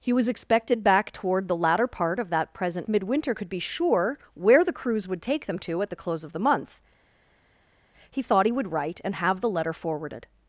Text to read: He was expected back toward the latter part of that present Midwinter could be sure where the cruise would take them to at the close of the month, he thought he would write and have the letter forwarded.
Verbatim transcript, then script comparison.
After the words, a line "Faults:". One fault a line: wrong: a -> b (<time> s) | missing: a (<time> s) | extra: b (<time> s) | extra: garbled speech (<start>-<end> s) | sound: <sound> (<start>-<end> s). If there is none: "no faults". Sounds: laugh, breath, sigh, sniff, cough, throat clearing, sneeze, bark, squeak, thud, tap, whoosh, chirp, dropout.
He was expected back toward the latter part of that present Midwinter could be sure where the cruise would take them to at the close of the month, he thought he would write and have the letter forwarded.
Faults:
no faults